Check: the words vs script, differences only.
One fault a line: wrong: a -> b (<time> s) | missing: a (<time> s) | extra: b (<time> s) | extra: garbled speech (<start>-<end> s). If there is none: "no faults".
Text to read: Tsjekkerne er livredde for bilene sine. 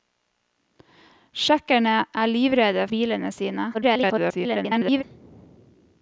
missing: for (2.9 s)
extra: garbled speech (3.7-5.0 s)